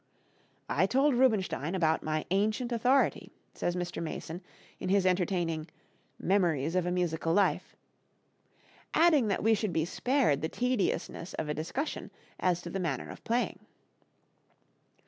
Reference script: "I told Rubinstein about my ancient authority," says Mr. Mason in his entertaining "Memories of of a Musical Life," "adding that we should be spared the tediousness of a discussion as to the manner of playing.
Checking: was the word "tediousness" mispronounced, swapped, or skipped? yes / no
no